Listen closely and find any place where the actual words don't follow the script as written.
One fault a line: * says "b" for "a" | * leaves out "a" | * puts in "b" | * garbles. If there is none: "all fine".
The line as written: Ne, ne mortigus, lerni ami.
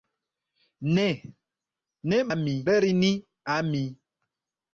* says "ami" for "mortigus"